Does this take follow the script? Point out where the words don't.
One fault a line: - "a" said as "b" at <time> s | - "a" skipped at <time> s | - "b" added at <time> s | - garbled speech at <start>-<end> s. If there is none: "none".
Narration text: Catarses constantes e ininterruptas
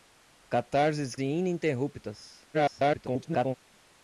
- "constantes" skipped at 1.1 s
- garbled speech at 2.5-3.6 s